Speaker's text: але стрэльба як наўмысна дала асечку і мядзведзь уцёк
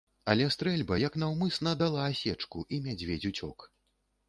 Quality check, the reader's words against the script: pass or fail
pass